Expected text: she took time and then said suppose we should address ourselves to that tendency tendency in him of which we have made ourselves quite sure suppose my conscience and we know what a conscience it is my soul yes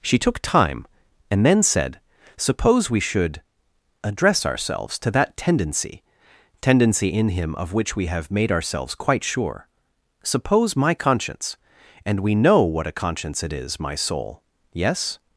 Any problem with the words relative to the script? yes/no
no